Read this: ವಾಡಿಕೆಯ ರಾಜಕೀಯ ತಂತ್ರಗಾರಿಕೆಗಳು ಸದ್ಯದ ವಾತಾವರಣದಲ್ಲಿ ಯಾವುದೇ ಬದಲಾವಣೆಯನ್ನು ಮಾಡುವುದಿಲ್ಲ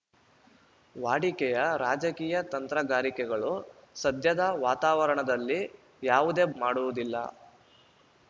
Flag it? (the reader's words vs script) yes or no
yes